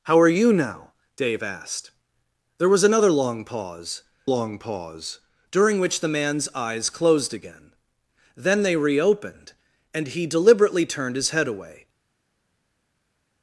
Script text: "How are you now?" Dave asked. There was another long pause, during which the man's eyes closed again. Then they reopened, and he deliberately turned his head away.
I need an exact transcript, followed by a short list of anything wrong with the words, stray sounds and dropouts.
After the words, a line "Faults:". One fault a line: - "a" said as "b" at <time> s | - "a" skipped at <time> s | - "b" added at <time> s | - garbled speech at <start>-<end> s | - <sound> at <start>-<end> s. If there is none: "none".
"How are you now?" Dave asked. There was another long pause long pause, during which the man's eyes closed again. Then they reopened, and he deliberately turned his head away.
Faults:
- "long pause" added at 4.2 s